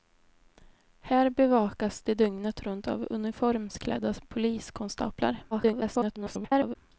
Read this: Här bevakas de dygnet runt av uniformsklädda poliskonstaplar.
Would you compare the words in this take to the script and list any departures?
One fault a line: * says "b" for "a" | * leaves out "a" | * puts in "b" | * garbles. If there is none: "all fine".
* garbles